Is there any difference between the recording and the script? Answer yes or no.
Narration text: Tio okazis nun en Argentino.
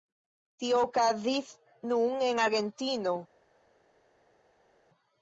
no